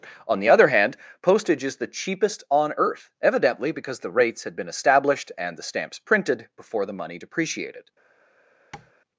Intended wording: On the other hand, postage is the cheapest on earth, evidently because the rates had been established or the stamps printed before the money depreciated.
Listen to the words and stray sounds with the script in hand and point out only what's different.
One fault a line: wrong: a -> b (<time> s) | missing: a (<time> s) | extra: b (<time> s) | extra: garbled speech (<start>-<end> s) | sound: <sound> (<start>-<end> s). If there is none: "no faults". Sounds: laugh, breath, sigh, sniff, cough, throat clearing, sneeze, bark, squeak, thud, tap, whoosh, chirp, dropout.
wrong: or -> and (5.4 s)
sound: tap (8.7-8.9 s)